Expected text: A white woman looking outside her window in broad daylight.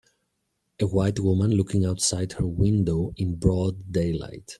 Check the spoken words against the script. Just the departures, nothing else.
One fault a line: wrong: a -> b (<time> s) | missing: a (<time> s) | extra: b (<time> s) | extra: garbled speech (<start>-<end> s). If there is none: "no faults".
no faults